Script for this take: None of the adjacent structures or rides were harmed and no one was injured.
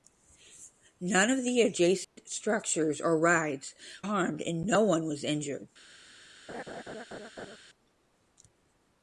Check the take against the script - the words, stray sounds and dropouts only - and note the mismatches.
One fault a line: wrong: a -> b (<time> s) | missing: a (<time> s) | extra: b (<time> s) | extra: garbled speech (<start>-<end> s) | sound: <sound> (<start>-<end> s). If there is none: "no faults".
sound: dropout (2.0-2.2 s)
missing: were (3.8 s)
sound: laugh (6.5-7.6 s)